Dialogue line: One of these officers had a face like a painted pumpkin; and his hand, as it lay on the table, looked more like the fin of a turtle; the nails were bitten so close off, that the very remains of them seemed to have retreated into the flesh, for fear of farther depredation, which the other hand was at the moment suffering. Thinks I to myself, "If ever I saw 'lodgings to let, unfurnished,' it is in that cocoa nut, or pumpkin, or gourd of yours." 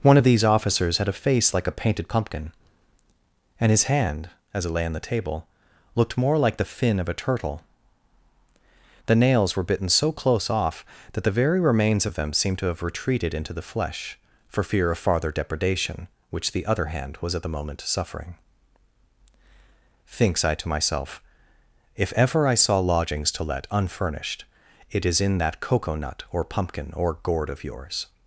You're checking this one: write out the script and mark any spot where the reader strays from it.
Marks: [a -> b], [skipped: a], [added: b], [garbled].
One of these officers had a face like a painted pumpkin; and his hand, as it lay on the table, looked more like the fin of a turtle; the nails were bitten so close off, that the very remains of them seemed to have retreated into the flesh, for fear of farther depredation, which the other hand was at the moment suffering. Thinks I to myself, "If ever I saw 'lodgings to let, unfurnished,' it is in that cocoa nut, or pumpkin, or gourd of yours."